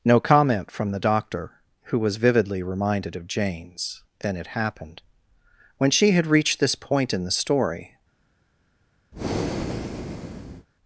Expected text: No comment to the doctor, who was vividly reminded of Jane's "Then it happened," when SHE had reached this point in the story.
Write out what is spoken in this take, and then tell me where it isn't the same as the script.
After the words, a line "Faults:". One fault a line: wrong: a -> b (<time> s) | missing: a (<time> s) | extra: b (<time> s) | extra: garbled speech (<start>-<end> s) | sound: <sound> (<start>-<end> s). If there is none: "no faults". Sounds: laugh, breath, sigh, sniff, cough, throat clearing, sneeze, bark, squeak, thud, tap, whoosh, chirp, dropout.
No comment from the doctor, who was vividly reminded of Jane's "Then it happened," when SHE had reached this point in the story.
Faults:
wrong: to -> from (0.7 s)
sound: breath (9.1-10.7 s)